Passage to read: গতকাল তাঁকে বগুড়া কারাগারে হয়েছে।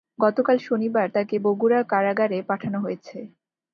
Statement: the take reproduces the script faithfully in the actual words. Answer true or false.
false